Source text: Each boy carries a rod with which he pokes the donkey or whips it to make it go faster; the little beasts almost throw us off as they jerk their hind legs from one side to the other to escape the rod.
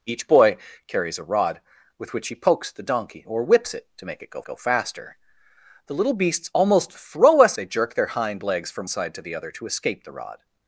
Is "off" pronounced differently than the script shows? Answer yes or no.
yes